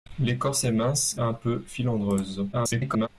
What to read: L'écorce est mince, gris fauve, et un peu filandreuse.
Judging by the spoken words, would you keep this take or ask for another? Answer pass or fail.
fail